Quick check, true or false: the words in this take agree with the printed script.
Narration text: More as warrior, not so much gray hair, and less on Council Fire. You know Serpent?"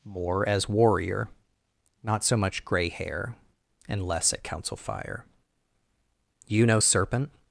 false